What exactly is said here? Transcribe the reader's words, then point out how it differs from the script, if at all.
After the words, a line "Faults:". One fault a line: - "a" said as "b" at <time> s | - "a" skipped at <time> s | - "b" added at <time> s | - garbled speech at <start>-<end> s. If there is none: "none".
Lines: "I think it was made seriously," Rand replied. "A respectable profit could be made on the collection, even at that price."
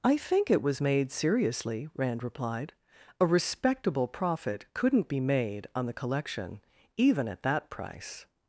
"I think it was made seriously," Rand replied. "A respectable profit couldn't be made on the collection, even at that price."
Faults:
- "could" said as "couldn't" at 4.7 s